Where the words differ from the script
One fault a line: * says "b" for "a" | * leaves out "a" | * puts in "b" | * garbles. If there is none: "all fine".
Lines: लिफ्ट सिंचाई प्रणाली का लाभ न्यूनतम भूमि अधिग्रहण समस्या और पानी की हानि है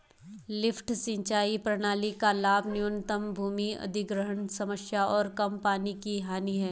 * puts in "कम"